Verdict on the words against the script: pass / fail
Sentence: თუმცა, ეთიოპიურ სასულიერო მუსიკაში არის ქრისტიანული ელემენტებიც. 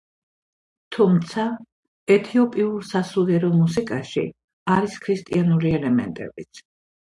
pass